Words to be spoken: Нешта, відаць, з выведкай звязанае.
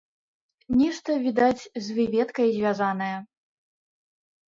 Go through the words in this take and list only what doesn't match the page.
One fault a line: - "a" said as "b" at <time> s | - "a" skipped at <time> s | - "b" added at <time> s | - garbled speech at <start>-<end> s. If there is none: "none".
none